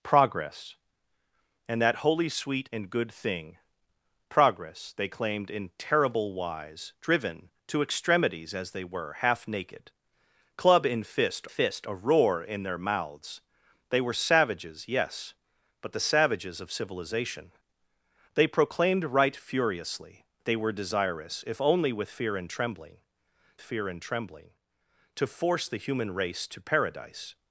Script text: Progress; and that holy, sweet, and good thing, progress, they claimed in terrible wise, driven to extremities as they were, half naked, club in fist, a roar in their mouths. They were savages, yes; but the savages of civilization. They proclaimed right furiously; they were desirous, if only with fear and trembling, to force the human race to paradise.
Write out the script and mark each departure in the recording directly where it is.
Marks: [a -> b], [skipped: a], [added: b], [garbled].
Progress; and that holy, sweet, and good thing, progress, they claimed in terrible wise, driven to extremities as they were, half naked, club in fist, [added: fist] a roar in their mouths. They were savages, yes; but the savages of civilization. They proclaimed right furiously; they were desirous, if only with fear and trembling, [added: fear and trembling] to force the human race to paradise.